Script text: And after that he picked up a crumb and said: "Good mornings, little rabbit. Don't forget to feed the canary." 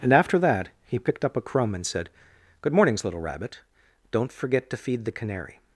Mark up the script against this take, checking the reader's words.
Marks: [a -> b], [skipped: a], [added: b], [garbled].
And after that he picked up a crumb and said: "Good mornings, little rabbit. Don't forget to feed the canary."